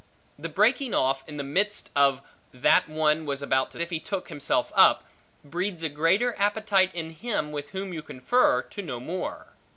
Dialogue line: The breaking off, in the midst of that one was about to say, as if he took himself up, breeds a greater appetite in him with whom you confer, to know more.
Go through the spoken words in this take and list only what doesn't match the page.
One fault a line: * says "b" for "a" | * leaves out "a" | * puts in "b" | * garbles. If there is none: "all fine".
* leaves out "say as"